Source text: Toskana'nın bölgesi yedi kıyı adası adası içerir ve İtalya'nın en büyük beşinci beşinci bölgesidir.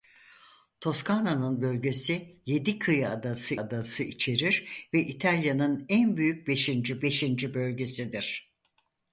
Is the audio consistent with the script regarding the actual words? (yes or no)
yes